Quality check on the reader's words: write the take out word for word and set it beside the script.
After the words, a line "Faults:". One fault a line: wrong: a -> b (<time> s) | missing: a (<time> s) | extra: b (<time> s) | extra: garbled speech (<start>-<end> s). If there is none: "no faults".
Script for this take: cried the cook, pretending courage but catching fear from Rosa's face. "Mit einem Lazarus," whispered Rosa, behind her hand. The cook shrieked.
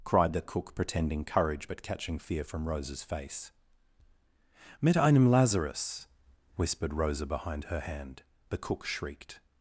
cried the cook, pretending courage but catching fear from Rosa's face. "Mit einem Lazarus," whispered Rosa, behind her hand. The cook shrieked.
Faults:
no faults